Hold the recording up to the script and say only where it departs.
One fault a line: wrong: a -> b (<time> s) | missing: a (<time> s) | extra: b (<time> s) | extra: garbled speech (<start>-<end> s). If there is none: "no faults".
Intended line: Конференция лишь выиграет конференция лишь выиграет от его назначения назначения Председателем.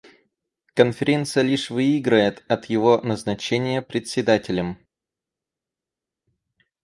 missing: конференция лишь выиграет (2.4 s)
missing: назначения (3.8 s)